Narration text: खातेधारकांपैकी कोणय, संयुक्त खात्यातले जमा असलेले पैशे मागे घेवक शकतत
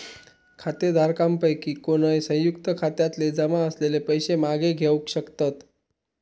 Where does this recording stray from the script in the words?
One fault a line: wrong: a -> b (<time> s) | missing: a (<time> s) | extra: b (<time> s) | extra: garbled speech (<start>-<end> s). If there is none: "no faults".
no faults